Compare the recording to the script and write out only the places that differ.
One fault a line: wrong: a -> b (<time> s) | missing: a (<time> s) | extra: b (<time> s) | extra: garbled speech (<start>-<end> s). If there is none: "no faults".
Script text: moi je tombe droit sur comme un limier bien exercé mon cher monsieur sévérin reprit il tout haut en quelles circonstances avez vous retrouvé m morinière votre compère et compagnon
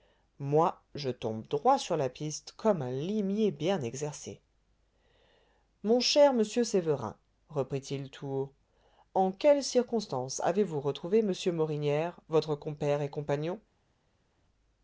extra: la piste (1.9 s)